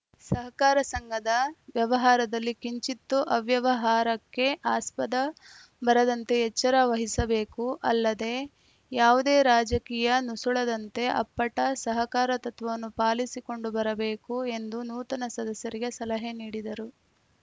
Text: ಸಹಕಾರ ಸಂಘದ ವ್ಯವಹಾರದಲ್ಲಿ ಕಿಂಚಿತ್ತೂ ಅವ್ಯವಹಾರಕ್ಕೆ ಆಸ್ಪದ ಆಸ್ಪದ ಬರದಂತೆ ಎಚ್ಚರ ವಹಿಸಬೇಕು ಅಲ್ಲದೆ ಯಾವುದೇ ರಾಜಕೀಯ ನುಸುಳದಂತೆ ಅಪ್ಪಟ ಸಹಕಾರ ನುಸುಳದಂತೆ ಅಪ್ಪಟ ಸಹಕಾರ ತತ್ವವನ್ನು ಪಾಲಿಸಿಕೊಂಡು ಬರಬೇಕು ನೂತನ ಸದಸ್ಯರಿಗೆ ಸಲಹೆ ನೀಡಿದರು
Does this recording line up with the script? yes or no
no